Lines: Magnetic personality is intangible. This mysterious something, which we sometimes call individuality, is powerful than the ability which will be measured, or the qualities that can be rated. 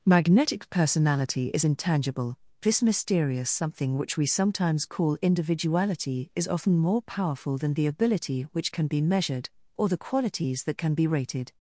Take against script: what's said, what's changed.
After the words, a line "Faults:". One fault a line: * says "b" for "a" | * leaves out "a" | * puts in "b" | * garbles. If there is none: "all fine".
Magnetic personality is intangible. This mysterious something, which we sometimes call individuality, is often more powerful than the ability which can be measured, or the qualities that can be rated.
Faults:
* puts in "often more"
* says "can" for "will"